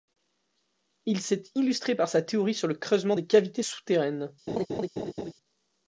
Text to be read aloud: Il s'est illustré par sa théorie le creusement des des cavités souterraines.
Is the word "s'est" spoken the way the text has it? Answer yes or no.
yes